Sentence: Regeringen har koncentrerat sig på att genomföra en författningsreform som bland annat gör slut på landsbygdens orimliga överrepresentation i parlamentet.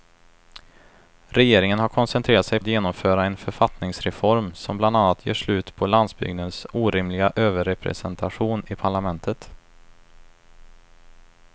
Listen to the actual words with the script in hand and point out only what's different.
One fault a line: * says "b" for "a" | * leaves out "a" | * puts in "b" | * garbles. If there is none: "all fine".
* leaves out "på"